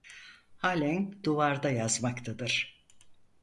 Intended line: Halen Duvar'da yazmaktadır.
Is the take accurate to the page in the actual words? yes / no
yes